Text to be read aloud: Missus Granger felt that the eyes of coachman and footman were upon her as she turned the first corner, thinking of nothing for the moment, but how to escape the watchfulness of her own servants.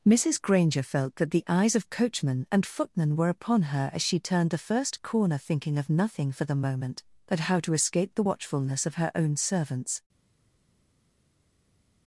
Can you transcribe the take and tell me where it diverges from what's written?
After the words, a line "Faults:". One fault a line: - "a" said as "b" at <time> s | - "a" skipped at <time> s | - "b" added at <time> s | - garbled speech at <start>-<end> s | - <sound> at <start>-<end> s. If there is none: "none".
Missus Granger felt that the eyes of coachman and footman were upon her as she turned the first corner, thinking of nothing for the moment, but how to escape the watchfulness of her own servants.
Faults:
none